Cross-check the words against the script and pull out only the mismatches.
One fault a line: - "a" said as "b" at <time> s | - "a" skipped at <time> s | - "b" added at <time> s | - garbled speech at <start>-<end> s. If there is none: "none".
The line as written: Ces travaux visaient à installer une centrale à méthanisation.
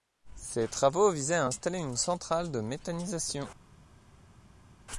- "à" said as "de" at 2.5 s